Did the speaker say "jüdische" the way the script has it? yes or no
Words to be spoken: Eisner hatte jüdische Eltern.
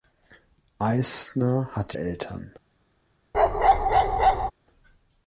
no